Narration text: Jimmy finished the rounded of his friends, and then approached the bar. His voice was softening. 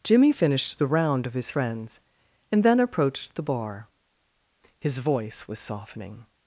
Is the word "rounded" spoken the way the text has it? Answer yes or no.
no